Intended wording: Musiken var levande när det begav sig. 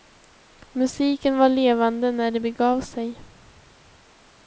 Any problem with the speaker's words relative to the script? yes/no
no